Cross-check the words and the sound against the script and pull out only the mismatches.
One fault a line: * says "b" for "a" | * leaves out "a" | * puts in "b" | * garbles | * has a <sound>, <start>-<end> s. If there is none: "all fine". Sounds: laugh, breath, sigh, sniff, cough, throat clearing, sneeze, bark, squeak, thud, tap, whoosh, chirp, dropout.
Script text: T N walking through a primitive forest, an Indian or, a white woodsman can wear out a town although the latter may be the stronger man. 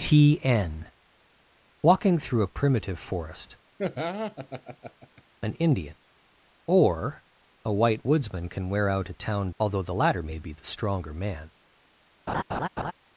* has a laugh, 3.8-5.2 s
* has a laugh, 12.3-12.9 s